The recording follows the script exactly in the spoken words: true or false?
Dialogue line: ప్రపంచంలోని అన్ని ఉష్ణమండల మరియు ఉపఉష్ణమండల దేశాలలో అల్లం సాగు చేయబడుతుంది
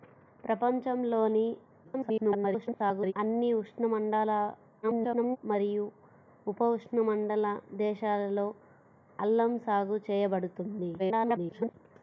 false